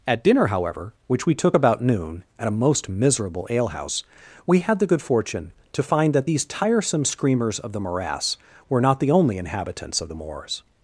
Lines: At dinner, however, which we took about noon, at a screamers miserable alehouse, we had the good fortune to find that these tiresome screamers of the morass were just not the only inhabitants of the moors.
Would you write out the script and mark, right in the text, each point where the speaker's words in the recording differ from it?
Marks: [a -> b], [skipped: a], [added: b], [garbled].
At dinner, however, which we took about noon, at a [screamers -> most] miserable alehouse, we had the good fortune to find that these tiresome screamers of the morass were [skipped: just] not the only inhabitants of the moors.